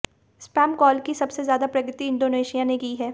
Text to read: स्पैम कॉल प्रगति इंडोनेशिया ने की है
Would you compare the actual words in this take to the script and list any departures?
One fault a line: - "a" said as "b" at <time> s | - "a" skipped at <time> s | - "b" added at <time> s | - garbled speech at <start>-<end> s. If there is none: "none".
- "की सबसे ज्यादा" added at 1.0 s